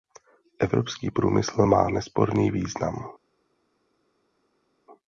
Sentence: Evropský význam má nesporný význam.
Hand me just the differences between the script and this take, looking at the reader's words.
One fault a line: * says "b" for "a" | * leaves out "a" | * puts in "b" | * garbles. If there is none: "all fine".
* says "průmysl" for "význam"